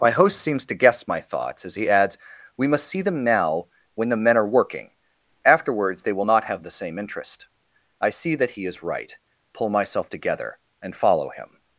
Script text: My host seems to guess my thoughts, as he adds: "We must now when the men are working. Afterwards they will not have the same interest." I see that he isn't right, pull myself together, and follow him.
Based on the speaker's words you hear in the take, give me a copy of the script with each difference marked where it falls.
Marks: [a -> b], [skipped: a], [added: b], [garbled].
My host seems to guess my thoughts, as he adds: "We must [added: see them] now when the men are working. Afterwards they will not have the same interest." I see that he [isn't -> is] right, pull myself together, and follow him.